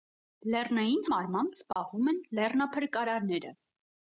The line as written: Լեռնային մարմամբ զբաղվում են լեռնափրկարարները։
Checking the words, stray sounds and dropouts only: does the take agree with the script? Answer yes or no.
no